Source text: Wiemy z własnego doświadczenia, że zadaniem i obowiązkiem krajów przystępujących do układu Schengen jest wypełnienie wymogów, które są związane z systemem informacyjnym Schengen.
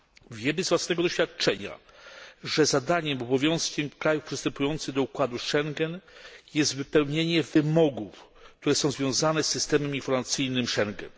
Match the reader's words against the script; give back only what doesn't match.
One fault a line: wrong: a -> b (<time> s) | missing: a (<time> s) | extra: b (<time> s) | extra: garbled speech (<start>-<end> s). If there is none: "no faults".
no faults